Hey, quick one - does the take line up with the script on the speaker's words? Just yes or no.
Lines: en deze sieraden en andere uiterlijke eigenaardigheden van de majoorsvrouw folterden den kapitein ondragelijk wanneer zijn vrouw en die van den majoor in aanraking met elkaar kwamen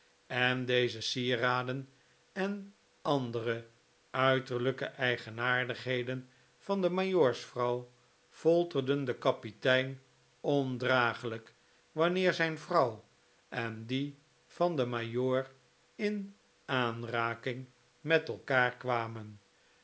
yes